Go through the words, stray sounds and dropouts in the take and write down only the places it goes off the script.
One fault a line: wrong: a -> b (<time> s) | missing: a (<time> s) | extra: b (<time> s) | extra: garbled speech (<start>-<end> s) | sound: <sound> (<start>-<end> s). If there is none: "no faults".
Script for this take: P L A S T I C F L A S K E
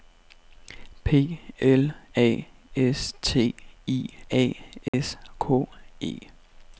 missing: C F L (4.1 s)
sound: dropout (4.9-4.9 s)